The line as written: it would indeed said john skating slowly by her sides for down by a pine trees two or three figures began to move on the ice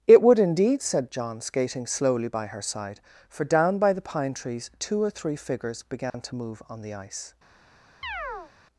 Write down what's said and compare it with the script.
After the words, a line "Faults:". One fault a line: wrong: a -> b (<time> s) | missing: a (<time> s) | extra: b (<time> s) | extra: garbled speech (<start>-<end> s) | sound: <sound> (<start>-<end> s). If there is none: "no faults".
it would indeed said john skating slowly by her side for down by the pine trees two or three figures began to move on the ice
Faults:
wrong: sides -> side (2.6 s)
wrong: a -> the (3.9 s)
sound: dropout (6.1-6.1 s)
sound: chirp (8.0-8.5 s)